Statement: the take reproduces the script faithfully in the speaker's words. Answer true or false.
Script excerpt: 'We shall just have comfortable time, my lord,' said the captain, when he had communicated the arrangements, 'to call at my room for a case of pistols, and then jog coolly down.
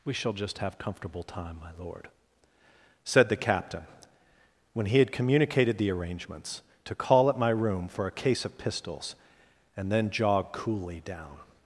true